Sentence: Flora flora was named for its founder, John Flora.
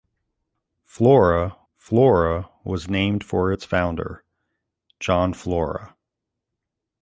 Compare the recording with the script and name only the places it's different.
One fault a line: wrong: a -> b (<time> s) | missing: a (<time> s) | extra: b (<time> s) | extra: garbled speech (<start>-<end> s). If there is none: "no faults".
no faults